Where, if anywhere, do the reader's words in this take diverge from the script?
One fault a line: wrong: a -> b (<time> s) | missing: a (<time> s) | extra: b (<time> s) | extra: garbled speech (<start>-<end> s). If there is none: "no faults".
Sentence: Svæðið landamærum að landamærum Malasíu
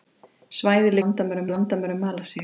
no faults